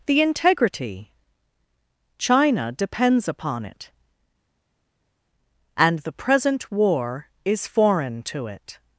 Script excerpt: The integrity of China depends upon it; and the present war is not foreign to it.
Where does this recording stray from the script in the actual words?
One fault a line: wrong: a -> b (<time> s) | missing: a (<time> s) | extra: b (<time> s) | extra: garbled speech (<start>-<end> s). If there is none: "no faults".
missing: of (1.1 s)
missing: not (7.7 s)